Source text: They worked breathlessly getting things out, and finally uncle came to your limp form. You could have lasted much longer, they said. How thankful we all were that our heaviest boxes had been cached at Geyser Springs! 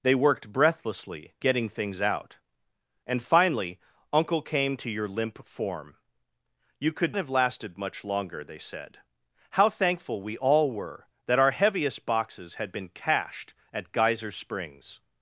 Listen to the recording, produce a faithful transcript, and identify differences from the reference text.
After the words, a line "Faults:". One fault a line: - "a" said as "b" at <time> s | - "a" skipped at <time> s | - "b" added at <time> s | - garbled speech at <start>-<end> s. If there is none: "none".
They worked breathlessly getting things out, and finally uncle came to your limp form. You could have lasted much longer, they said. How thankful we all were that our heaviest boxes had been cached at Geyser Springs!
Faults:
none